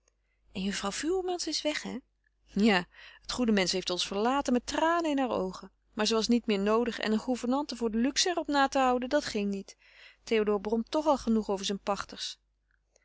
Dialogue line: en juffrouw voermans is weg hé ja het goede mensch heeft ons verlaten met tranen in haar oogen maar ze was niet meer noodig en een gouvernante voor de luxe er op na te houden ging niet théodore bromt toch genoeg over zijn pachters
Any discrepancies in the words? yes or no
yes